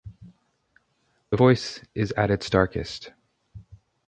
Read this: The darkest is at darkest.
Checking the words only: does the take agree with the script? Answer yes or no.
no